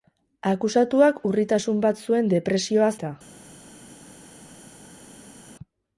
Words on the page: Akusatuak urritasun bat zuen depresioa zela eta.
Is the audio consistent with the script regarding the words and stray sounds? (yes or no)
no